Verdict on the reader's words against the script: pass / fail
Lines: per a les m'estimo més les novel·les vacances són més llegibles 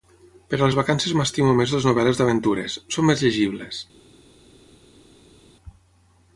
fail